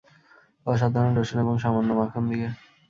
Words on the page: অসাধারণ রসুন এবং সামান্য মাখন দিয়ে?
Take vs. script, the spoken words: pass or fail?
pass